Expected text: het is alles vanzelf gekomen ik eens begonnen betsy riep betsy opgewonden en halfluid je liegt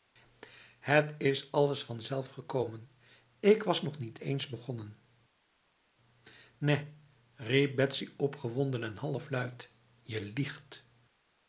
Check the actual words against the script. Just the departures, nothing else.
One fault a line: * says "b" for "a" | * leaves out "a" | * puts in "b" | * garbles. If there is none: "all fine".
* puts in "was nog niet"
* says "nèh" for "betsy"